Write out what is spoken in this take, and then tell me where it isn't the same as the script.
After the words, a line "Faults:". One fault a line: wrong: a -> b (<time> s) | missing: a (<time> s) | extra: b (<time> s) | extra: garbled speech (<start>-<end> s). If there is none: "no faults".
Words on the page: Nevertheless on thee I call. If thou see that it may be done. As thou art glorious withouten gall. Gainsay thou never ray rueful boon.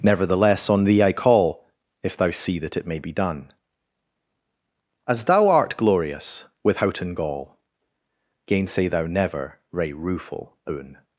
Nevertheless on thee I call. If thou see that it may be done. As thou art glorious withouten gall. Gainsay thou never ray rueful boon.
Faults:
no faults